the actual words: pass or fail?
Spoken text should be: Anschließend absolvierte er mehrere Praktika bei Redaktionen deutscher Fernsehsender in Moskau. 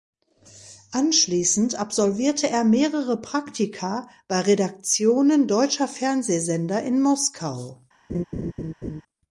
pass